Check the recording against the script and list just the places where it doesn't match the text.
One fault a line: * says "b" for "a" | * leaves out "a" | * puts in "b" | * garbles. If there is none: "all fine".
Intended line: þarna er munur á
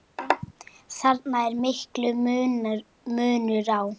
* puts in "mikill"